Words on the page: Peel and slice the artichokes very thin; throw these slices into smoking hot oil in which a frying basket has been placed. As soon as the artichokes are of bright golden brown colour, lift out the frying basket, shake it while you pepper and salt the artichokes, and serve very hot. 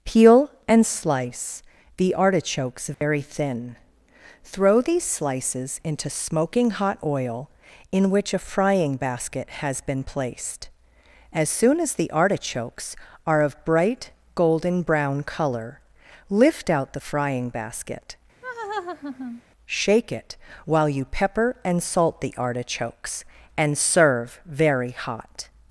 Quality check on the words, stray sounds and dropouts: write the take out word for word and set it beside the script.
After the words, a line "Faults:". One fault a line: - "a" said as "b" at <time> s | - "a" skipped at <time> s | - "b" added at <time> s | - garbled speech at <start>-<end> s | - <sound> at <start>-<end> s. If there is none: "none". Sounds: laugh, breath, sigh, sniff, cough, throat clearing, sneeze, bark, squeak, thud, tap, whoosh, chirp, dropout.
Peel and slice the artichokes very thin; throw these slices into smoking hot oil in which a frying basket has been placed. As soon as the artichokes are of bright golden brown colour, lift out the frying basket, shake it while you pepper and salt the artichokes, and serve very hot.
Faults:
- dropout at 2.9-3.0 s
- laugh at 18.4-19.4 s